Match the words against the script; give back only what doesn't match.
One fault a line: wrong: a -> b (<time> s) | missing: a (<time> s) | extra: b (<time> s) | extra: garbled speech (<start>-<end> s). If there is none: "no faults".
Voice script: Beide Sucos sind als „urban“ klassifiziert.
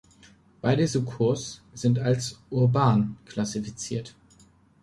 no faults